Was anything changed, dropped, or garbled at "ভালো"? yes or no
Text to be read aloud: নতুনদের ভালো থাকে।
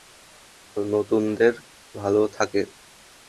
no